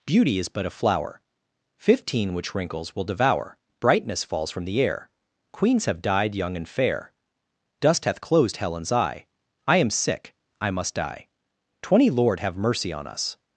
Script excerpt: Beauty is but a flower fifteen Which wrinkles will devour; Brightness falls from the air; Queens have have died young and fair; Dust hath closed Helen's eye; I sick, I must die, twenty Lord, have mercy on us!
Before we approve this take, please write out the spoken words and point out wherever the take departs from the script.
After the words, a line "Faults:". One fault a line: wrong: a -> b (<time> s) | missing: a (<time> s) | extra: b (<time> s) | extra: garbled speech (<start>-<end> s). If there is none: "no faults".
Beauty is but a flower fifteen Which wrinkles will devour; Brightness falls from the air; Queens have died young and fair; Dust hath closed Helen's eye; I am sick, I must die, twenty Lord, have mercy on us!
Faults:
missing: have (6.0 s)
extra: am (9.8 s)